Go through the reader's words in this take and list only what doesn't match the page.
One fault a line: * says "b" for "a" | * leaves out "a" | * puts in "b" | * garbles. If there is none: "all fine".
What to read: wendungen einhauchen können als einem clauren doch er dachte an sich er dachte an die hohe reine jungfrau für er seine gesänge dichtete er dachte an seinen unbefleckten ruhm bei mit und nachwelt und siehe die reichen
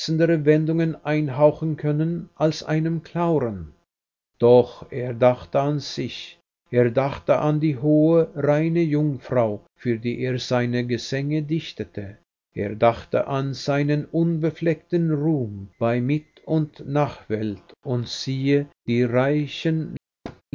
* puts in "die"